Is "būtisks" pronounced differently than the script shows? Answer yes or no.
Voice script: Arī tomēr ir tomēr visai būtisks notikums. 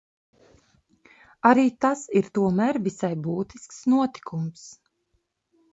no